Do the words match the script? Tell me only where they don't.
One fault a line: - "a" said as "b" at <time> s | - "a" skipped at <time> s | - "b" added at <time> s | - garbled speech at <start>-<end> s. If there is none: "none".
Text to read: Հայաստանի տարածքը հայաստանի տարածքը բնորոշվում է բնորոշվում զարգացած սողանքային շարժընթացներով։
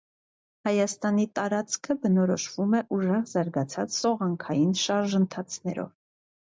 - "հայաստանի տարածքը" skipped at 2.0 s
- "բնորոշվում" said as "ուժեղ" at 3.0 s